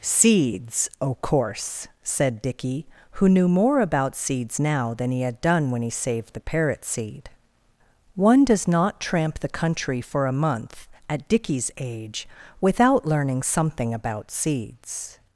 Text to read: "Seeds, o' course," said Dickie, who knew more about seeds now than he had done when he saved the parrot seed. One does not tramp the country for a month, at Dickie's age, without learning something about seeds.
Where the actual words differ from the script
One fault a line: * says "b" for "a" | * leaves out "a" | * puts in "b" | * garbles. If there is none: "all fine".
all fine